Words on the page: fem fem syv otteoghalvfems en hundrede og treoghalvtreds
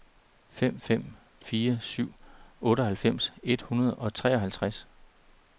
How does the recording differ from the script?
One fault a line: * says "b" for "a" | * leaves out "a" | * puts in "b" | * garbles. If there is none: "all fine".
* puts in "fire"
* says "et" for "en"